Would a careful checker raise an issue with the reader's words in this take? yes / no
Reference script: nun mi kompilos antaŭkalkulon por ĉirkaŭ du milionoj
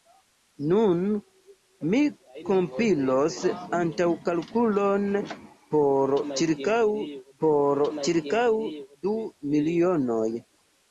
yes